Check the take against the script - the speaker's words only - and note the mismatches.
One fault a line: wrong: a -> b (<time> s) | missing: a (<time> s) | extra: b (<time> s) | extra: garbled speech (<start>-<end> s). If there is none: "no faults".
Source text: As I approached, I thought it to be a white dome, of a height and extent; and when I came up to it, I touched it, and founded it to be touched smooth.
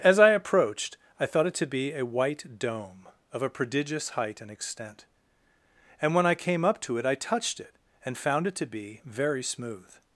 extra: prodigious (3.5 s)
wrong: founded -> found (8.2 s)
wrong: touched -> very (9.1 s)